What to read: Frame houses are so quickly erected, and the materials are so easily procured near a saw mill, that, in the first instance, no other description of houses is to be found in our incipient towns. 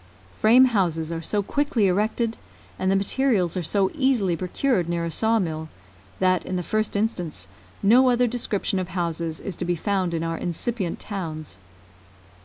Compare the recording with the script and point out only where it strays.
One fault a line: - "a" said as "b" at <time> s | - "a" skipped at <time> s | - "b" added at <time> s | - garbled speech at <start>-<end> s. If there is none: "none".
none